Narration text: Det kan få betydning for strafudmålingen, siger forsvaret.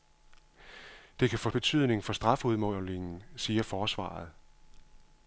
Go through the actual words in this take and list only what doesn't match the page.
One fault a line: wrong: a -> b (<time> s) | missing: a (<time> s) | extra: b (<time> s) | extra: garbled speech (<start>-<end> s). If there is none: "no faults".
no faults